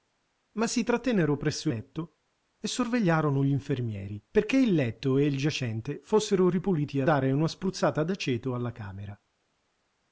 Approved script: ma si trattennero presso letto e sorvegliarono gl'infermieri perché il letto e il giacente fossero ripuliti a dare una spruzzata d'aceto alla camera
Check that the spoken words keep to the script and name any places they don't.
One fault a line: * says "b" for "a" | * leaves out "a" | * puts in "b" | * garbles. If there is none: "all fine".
all fine